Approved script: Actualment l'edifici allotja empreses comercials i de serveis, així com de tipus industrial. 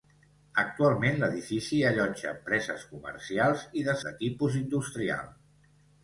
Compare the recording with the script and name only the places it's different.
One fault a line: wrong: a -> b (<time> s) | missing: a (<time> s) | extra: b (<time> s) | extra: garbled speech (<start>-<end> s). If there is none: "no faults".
missing: serveis així com (4.0 s)